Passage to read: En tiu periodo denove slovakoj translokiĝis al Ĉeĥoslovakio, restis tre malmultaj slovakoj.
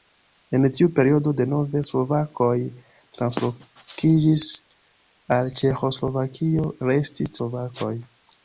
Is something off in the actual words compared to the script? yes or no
yes